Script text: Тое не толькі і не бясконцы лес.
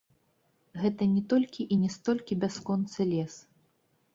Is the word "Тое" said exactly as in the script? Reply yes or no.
no